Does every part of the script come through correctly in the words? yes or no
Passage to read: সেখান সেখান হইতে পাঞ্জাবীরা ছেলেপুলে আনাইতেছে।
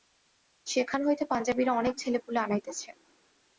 no